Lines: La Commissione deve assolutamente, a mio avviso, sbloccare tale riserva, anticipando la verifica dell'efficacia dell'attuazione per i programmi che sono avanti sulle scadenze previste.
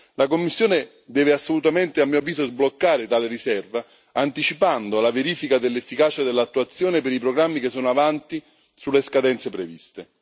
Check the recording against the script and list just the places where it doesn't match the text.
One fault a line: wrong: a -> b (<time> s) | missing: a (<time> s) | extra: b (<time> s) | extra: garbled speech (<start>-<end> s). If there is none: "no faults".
no faults